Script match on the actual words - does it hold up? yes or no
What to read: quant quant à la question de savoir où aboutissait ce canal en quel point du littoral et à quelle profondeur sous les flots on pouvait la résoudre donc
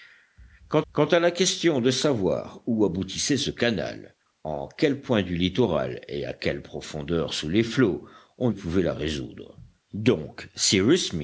yes